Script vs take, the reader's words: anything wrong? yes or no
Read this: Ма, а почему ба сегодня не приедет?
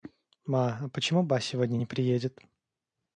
no